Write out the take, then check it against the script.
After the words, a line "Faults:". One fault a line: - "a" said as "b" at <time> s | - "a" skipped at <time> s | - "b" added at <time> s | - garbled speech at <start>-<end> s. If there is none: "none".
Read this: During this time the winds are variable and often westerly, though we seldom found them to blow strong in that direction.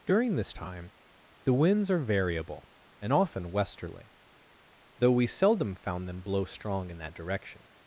During this time the winds are variable and often westerly, though we seldom found them blow strong in that direction.
Faults:
- "to" skipped at 6.2 s